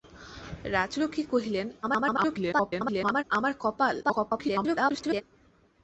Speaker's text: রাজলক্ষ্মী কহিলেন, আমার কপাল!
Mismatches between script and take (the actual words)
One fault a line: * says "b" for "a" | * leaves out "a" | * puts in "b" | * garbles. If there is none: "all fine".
* garbles
* garbles